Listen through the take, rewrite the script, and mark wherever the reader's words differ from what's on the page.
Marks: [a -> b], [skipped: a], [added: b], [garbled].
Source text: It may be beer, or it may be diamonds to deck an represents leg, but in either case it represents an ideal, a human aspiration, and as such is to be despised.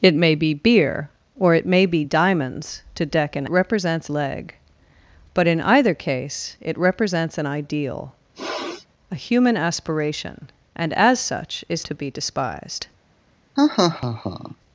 It may be beer, or it may be diamonds to deck an represents leg, but in either case it represents an ideal, a human aspiration, and as such is to be despised.